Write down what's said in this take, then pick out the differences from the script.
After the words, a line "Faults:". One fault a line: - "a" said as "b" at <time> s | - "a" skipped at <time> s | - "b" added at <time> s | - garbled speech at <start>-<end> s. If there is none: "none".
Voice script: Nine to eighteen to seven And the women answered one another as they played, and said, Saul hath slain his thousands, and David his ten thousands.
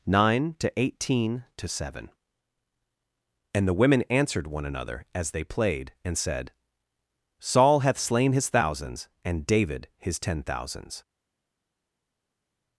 Nine to eighteen to seven And the women answered one another as they played, and said, Saul hath slain his thousands, and David his ten thousands.
Faults:
none